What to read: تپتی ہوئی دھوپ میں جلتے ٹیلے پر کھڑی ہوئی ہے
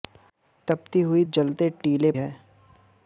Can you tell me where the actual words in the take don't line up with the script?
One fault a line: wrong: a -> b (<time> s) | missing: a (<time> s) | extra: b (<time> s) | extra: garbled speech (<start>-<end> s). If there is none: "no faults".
missing: دھوپ میں (1.2 s)
missing: پر کھڑی ہوئی (2.1 s)